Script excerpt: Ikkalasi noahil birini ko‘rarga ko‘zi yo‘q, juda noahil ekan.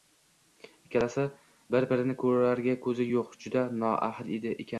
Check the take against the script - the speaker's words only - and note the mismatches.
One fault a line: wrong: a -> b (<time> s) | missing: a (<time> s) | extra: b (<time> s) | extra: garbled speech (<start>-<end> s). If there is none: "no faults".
wrong: noahil -> bir (1.8 s)